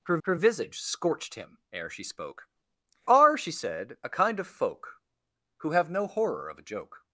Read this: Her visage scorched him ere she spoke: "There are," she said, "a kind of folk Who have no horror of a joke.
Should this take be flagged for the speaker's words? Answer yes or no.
yes